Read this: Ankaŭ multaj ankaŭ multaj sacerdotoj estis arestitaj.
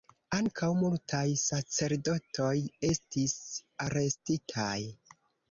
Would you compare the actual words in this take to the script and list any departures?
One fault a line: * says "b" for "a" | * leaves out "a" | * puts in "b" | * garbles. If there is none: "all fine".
* leaves out "ankaŭ multaj"